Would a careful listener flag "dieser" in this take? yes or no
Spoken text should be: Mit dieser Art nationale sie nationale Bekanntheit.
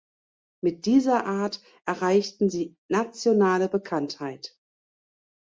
no